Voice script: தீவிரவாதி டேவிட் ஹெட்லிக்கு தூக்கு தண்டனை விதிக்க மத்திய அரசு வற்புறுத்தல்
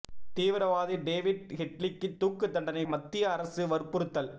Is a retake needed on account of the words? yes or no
yes